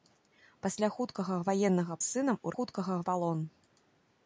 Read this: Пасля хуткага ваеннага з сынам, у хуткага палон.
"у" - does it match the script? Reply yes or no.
yes